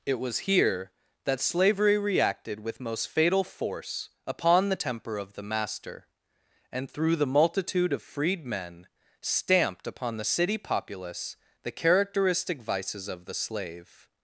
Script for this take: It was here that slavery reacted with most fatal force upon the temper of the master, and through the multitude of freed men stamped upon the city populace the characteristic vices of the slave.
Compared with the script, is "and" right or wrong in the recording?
right